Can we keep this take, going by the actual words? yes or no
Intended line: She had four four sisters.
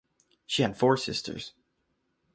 no